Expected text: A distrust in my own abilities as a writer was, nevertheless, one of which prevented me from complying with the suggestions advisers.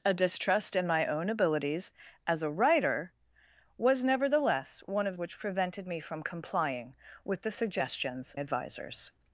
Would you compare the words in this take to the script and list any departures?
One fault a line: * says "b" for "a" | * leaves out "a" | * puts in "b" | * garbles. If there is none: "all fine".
all fine